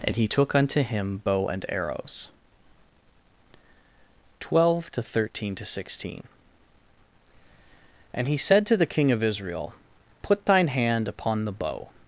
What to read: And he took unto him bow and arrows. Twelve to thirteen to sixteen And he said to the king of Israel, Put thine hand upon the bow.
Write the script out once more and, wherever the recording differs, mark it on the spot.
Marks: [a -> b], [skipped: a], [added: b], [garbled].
And he took unto him bow and arrows. Twelve to thirteen to sixteen And he said to the king of Israel, Put thine hand upon the bow.